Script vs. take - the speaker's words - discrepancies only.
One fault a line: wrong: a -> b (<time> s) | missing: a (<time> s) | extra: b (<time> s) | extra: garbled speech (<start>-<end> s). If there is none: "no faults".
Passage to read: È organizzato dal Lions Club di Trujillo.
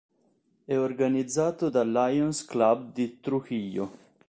no faults